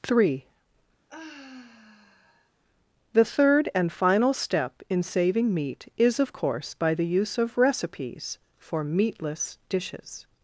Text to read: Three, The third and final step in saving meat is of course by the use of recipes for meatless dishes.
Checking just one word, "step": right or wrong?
right